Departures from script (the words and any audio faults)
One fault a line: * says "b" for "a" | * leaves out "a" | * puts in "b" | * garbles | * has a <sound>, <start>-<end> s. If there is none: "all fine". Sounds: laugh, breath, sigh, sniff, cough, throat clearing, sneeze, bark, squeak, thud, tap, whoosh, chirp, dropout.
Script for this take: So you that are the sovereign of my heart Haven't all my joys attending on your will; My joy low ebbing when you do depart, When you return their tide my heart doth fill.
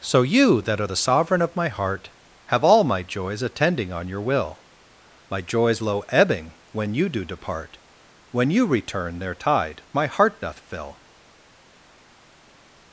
* says "Have" for "Haven't"
* says "joys" for "joy"